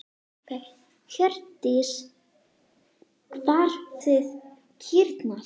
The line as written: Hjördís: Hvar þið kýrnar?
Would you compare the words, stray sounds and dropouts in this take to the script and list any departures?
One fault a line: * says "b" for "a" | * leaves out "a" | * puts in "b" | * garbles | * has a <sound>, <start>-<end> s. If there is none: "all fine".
all fine